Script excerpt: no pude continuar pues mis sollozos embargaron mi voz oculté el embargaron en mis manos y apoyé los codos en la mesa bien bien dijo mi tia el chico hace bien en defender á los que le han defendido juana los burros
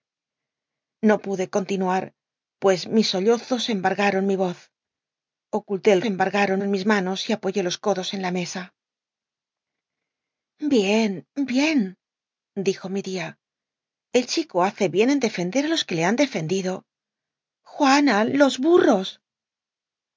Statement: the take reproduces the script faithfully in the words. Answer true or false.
true